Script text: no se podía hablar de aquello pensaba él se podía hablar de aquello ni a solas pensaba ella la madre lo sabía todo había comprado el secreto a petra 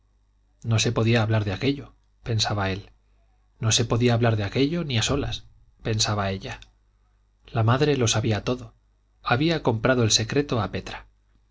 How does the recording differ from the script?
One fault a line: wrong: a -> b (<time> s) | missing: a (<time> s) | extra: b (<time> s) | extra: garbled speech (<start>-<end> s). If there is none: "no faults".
extra: no (3.6 s)